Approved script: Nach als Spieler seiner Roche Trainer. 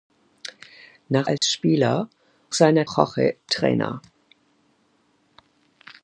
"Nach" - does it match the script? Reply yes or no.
yes